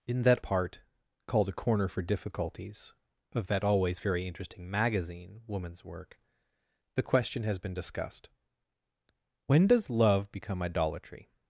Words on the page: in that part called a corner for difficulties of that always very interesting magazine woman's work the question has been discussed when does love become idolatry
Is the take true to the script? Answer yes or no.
yes